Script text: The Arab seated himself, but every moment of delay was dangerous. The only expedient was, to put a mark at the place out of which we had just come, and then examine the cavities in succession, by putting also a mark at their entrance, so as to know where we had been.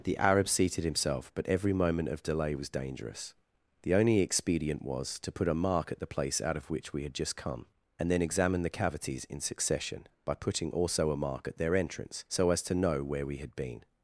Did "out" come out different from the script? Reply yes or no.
no